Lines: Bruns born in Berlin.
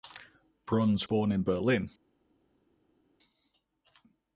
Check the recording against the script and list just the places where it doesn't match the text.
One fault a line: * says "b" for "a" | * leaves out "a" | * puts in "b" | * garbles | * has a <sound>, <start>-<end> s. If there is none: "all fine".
all fine